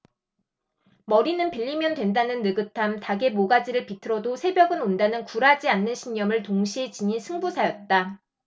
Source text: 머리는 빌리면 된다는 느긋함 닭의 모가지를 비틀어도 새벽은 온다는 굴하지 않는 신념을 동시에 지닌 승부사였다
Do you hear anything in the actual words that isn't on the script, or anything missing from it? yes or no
no